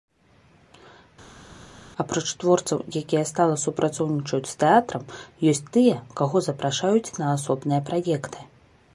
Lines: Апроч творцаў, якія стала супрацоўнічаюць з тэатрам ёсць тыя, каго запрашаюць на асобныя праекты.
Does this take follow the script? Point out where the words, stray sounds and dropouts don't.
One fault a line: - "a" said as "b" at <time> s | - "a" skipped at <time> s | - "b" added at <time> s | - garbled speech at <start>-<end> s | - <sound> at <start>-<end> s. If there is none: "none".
none